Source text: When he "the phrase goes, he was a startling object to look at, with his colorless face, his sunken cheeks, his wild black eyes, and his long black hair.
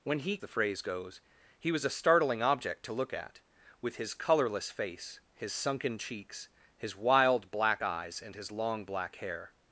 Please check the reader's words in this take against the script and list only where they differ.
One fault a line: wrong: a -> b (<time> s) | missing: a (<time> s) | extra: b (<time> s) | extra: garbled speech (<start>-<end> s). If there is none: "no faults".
no faults